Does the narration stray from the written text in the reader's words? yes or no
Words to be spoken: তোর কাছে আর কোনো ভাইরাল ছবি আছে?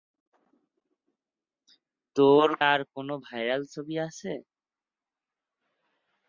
yes